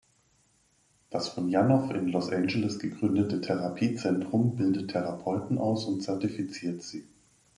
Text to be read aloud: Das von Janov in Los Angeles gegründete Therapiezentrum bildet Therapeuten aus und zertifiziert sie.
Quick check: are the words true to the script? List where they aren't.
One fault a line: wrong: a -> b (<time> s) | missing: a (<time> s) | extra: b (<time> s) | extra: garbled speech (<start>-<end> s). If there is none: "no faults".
no faults